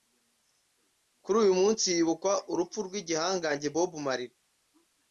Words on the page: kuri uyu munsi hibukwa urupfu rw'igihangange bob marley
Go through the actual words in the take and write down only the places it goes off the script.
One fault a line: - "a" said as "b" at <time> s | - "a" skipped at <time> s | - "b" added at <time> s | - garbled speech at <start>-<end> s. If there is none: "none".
none